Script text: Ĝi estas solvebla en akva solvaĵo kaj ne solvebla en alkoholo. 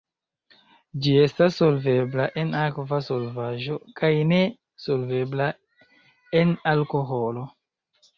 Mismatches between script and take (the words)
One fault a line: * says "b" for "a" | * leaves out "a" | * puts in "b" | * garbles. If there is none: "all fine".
all fine